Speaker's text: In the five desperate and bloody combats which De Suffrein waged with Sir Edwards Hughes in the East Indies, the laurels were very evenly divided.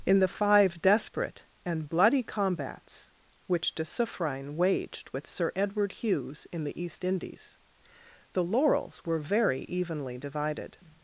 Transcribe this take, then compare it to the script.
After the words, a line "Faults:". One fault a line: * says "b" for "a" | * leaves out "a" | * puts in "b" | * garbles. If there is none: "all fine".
In the five desperate and bloody combats which De Suffrein waged with Sir Edward Hughes in the East Indies, the laurels were very evenly divided.
Faults:
* says "Edward" for "Edwards"